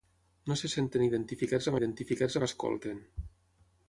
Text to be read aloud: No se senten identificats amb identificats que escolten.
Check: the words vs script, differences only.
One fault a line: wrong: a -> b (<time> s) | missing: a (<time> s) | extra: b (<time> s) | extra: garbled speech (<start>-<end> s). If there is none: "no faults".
no faults